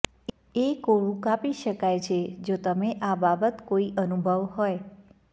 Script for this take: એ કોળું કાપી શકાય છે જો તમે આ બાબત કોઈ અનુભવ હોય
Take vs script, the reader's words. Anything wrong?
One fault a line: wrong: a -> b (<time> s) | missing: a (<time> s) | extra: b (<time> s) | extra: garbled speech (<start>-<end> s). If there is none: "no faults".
no faults